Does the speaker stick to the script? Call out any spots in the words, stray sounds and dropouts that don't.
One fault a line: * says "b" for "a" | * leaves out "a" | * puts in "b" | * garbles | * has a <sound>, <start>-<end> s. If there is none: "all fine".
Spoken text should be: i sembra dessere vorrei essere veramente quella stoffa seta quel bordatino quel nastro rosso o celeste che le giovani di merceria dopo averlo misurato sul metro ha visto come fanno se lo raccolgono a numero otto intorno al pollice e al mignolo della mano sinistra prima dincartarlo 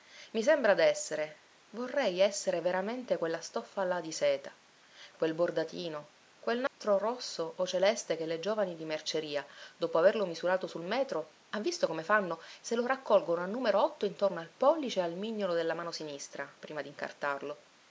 * puts in "là di"
* has a dropout, 6.7-6.8 s